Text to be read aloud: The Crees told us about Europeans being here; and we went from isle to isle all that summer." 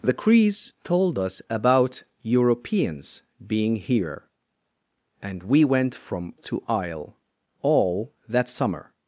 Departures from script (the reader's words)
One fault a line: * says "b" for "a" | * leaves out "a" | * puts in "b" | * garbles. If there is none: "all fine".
* leaves out "isle"